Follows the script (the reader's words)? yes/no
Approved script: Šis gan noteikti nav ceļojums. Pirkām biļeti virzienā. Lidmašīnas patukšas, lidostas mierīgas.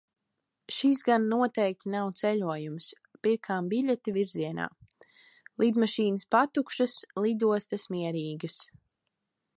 yes